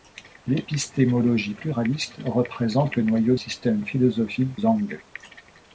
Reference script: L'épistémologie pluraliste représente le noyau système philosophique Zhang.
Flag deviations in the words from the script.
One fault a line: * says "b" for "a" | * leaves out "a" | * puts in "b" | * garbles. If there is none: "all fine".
all fine